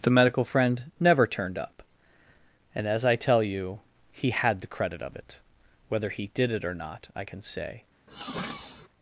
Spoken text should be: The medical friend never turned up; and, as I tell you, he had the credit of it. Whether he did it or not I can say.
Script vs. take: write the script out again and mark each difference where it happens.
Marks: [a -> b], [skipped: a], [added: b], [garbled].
The medical friend never turned up; and, as I tell you, he had the credit of it. Whether he did it or not I can say.